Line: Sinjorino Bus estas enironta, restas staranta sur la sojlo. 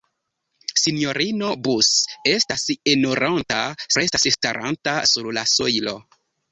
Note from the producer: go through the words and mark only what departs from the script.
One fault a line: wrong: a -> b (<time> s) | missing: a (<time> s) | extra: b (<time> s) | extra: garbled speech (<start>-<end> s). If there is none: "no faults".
no faults